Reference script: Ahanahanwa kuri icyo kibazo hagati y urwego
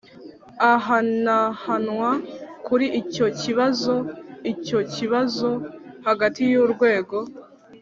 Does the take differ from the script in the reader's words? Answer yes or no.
yes